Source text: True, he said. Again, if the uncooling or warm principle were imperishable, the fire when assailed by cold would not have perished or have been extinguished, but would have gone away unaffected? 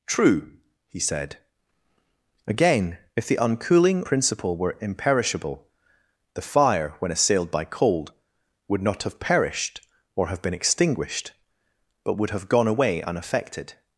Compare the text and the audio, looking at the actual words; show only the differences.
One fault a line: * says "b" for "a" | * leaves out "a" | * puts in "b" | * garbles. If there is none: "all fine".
* leaves out "or warm"